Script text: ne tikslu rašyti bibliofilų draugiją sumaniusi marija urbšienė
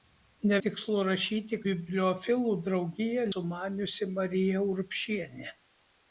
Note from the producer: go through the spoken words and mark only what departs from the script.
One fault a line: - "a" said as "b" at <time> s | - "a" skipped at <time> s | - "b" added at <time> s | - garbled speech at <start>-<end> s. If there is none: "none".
none